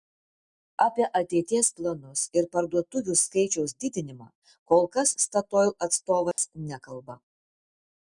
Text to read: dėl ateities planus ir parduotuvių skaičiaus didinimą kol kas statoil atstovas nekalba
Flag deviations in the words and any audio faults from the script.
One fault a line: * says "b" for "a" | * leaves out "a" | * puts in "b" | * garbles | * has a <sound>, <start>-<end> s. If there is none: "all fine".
* says "apie" for "dėl"
* has a dropout, 6.3-6.4 s